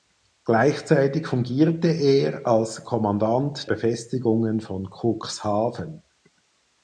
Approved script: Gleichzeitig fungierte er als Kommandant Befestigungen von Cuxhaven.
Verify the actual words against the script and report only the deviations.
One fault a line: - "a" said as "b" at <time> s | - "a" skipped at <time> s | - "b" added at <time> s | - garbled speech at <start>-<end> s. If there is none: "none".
none